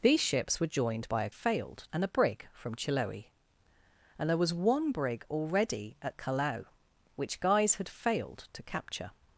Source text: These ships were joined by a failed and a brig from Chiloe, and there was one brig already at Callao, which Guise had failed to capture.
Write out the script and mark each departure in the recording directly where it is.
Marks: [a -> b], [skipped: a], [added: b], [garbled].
These ships were joined by a failed and a brig from Chiloe, and there was one brig already at Callao, which Guise had failed to capture.